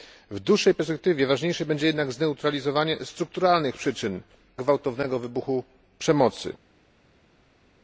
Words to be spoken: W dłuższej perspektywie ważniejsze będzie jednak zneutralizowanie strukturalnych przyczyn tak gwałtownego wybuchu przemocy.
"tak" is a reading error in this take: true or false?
true